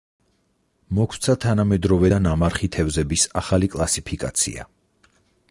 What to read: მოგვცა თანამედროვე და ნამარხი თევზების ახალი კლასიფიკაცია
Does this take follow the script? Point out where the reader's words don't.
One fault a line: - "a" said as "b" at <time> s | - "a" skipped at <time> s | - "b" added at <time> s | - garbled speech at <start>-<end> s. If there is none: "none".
none